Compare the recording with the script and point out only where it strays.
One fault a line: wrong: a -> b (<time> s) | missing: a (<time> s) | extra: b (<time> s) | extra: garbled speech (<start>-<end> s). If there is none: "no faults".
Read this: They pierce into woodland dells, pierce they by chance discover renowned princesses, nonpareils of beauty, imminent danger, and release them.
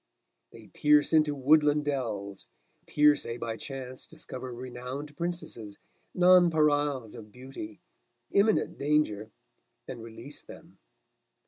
no faults